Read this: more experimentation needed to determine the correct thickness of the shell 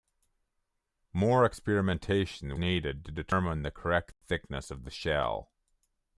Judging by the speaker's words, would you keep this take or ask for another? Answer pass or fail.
pass